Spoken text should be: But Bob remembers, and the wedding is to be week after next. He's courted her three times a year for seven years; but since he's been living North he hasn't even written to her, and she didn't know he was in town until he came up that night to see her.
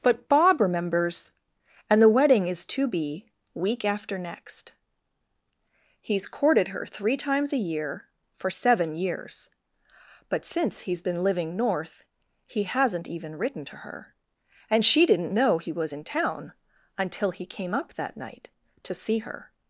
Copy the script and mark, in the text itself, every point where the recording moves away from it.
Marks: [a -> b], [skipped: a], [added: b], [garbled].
But Bob remembers, and the wedding is to be week after next. He's courted her three times a year for seven years; but since he's been living North he hasn't even written to her, and she didn't know he was in town until he came up that night to see her.